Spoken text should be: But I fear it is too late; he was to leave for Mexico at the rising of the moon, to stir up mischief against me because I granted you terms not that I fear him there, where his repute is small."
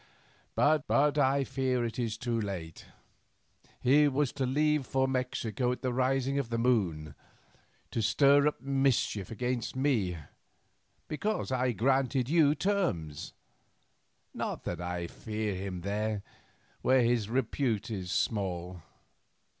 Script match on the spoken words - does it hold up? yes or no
no